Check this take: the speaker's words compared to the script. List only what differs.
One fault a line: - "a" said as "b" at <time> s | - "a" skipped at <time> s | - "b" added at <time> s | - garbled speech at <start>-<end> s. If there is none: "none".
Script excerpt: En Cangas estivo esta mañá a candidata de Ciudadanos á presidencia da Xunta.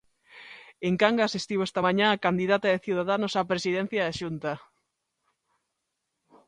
none